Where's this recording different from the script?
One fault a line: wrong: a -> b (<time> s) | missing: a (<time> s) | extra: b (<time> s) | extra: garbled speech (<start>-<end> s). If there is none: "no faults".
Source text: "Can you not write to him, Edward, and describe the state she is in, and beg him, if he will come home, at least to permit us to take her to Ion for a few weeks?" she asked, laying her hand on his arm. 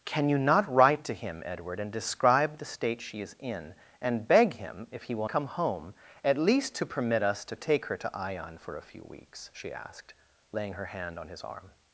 no faults